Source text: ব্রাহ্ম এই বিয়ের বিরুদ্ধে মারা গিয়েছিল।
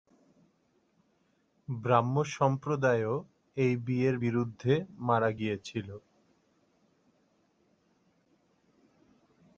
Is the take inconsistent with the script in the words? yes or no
yes